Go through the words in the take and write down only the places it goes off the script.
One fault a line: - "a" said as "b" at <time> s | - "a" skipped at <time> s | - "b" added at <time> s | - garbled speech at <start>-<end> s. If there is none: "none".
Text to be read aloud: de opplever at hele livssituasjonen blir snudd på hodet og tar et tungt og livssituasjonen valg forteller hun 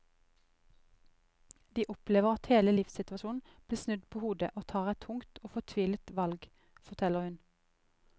- "livssituasjonen" said as "fortvilet" at 5.5 s